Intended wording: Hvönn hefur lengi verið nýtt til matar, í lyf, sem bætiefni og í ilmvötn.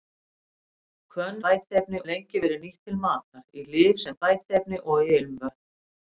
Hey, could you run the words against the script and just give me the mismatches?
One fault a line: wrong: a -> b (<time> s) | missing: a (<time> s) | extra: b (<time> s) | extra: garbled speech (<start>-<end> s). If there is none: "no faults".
wrong: hefur -> bætiefni (1.5 s)